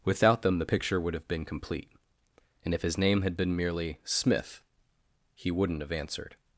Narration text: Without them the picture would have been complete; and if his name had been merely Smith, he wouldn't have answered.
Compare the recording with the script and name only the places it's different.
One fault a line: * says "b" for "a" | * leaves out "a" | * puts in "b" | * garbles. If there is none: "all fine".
all fine